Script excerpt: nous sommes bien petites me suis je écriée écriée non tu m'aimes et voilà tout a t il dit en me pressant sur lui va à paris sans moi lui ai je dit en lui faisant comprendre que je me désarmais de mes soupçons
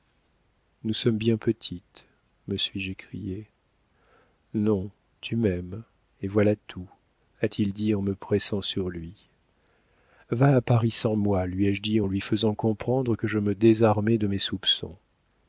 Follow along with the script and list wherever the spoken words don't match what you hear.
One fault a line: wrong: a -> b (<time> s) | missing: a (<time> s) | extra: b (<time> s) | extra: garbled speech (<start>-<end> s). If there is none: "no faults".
missing: écriée (3.5 s)